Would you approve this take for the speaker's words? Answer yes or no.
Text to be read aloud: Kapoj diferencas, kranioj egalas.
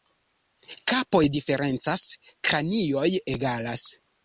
yes